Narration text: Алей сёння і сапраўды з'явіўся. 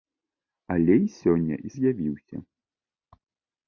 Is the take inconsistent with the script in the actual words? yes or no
yes